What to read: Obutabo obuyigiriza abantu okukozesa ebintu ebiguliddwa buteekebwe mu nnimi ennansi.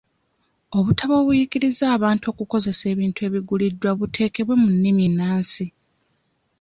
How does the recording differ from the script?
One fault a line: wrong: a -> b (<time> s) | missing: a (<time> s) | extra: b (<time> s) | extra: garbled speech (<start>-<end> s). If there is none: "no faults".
no faults